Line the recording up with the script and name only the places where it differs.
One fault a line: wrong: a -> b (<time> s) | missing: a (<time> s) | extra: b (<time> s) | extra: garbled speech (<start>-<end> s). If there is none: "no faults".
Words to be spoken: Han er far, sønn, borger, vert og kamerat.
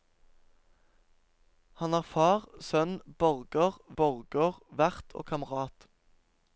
extra: borger (4.0 s)